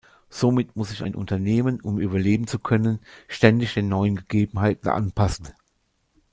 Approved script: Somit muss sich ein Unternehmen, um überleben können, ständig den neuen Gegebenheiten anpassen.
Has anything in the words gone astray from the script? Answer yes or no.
yes